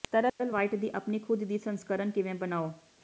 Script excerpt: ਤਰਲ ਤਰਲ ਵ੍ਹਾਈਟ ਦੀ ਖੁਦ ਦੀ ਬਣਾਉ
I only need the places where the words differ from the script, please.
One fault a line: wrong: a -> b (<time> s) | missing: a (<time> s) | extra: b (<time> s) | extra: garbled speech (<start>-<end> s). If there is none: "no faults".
missing: ਤਰਲ (0.5 s)
extra: ਆਪਣੀ (0.9 s)
extra: ਸੰਸਕਰਣ ਕਿਵੇਂ (1.6 s)